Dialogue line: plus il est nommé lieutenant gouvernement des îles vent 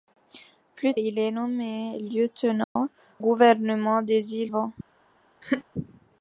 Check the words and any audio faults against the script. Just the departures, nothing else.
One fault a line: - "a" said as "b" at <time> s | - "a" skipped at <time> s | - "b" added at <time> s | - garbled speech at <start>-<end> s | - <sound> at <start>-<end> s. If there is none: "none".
- dropout at 2.6-2.8 s
- laugh at 5.4-5.6 s